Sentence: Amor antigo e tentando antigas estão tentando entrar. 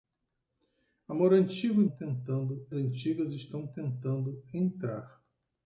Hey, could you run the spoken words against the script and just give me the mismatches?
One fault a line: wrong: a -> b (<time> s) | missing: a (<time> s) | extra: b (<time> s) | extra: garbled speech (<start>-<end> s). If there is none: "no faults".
no faults